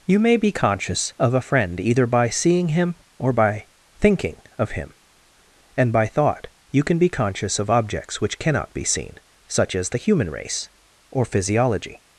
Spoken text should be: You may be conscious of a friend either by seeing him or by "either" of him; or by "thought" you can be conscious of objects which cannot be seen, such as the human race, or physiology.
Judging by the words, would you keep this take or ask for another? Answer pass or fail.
fail